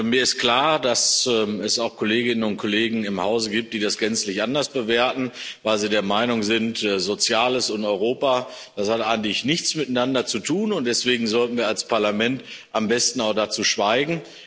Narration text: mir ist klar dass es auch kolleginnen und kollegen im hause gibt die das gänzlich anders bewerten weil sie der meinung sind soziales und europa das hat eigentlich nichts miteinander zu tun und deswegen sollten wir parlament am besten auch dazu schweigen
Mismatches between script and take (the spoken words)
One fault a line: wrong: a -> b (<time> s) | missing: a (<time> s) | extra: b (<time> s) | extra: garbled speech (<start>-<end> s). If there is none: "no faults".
extra: als (11.7 s)